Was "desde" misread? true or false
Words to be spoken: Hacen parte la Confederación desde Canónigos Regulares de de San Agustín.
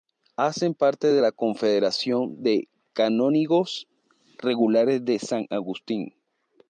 true